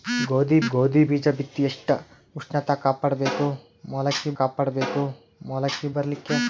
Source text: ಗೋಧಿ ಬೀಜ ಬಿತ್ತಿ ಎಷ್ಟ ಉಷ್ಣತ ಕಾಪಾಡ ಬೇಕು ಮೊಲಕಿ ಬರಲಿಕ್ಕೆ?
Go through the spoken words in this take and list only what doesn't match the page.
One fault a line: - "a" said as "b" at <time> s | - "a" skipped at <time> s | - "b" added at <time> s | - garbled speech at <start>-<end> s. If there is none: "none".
- "ಗೋಧಿ" added at 0.7 s
- "ಕಾಪಾಡ ಬೇಕು ಮೊಲಕಿ" added at 4.4 s